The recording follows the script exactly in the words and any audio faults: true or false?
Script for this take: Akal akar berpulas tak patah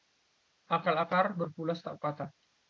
true